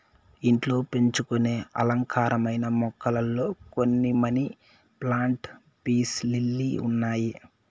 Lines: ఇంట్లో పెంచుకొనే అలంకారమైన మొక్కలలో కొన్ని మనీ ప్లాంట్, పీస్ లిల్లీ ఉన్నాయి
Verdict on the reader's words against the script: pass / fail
pass